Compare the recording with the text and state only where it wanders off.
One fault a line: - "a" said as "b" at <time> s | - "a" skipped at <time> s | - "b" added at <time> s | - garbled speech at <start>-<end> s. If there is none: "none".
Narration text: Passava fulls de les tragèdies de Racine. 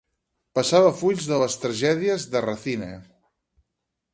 none